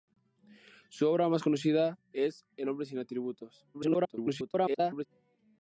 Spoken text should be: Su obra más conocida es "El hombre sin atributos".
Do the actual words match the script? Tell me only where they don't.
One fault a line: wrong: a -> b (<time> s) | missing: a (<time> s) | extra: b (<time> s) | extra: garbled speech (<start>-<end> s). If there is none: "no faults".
extra: garbled speech (3.7-5.1 s)